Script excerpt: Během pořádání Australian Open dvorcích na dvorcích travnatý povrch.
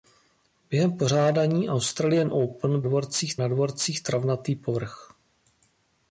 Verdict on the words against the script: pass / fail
pass